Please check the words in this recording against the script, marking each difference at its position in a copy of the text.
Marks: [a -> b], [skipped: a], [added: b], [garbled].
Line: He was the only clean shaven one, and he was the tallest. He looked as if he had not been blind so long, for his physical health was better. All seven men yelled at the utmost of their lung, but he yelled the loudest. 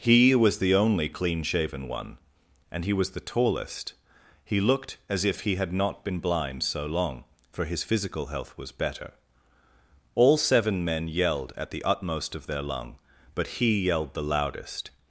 He was the only clean shaven one, and he was the tallest. He looked as if he had not been blind so long, for his physical health was better. All seven men yelled at the utmost of their lung, but he yelled the loudest.